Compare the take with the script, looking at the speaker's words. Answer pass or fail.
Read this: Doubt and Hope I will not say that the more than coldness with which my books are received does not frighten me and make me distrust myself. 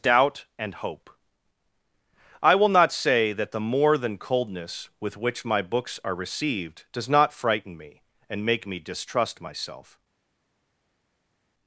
pass